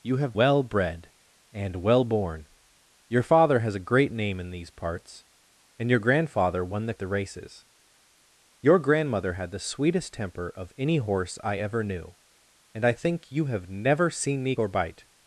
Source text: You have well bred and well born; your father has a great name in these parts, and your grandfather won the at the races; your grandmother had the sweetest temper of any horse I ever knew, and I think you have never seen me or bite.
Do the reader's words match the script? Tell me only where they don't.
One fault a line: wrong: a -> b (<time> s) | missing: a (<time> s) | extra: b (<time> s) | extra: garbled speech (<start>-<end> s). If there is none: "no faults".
no faults